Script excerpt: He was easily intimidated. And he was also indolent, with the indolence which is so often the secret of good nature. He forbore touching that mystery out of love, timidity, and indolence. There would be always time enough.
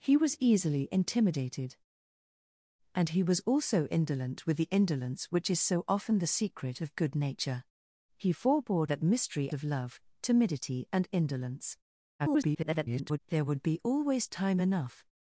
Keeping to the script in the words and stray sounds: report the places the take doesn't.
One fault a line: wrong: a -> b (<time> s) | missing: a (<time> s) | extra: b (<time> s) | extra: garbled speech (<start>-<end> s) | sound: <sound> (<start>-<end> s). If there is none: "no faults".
missing: touching (8.9 s)
missing: out (9.5 s)
extra: garbled speech (12.2-13.2 s)